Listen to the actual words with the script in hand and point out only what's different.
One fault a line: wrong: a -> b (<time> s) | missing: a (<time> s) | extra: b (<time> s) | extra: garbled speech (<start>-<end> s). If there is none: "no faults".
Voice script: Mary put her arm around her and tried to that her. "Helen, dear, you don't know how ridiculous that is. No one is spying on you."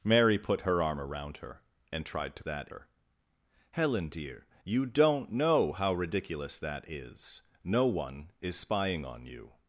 no faults